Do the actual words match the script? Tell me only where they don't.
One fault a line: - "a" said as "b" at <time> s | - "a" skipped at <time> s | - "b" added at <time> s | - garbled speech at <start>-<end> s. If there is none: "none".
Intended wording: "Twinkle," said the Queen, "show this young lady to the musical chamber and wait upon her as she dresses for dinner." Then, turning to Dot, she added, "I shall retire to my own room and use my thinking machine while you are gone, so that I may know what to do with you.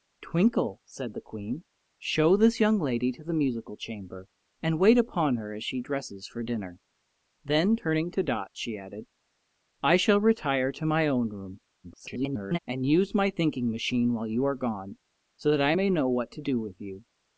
- garbled speech at 11.8-12.6 s